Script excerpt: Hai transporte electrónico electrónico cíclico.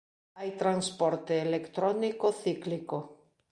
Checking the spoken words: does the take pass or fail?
fail